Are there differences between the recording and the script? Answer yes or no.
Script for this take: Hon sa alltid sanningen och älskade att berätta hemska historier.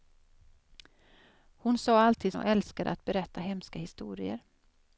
yes